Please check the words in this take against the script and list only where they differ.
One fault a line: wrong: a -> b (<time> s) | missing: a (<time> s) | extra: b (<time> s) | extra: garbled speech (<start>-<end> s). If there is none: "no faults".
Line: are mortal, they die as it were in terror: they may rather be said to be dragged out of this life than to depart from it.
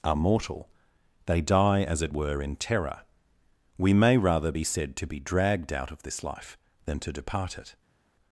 wrong: they -> we (3.8 s)
missing: from (7.6 s)